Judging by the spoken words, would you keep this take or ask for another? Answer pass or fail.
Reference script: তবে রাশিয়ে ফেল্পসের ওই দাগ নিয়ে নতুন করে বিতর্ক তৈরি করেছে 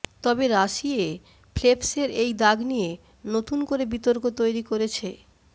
fail